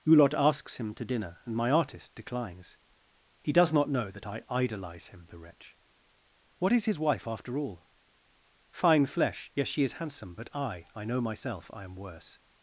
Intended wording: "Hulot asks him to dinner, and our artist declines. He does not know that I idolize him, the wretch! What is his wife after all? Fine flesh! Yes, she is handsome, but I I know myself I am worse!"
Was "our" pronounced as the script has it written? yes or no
no